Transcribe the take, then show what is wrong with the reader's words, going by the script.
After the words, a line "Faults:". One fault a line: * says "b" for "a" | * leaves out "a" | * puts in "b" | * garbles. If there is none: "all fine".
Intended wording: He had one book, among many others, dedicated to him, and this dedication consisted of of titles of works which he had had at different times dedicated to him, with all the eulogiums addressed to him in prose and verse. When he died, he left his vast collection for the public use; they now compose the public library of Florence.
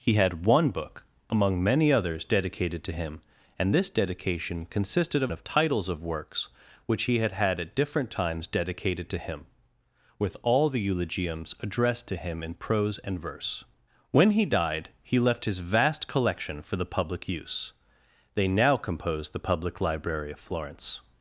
He had one book, among many others, dedicated to him, and this dedication consisted of of titles of works which he had had at different times dedicated to him, with all the eulogiums addressed to him in prose and verse. When he died, he left his vast collection for the public use; they now compose the public library of Florence.
Faults:
all fine